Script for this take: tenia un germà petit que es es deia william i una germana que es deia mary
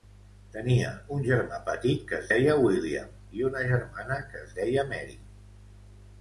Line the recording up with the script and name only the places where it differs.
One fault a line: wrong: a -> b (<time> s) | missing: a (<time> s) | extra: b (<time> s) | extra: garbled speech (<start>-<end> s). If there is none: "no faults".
missing: es (2.3 s)